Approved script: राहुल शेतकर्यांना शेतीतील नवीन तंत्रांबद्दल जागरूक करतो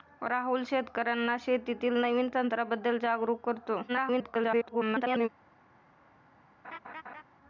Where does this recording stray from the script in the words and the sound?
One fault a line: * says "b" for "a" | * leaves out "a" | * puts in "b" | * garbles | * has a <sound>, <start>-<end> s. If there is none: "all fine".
* garbles
* has a laugh, 6.6-7.2 s